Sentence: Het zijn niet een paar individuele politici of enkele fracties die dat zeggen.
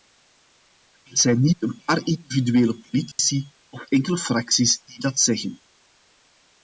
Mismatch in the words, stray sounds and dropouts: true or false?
true